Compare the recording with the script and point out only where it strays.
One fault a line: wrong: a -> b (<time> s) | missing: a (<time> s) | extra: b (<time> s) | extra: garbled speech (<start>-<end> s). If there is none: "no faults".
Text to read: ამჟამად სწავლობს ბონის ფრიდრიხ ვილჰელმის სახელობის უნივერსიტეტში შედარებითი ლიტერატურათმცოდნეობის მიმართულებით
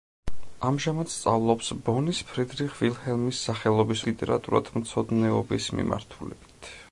missing: უნივერსიტეტში შედარებითი (4.0 s)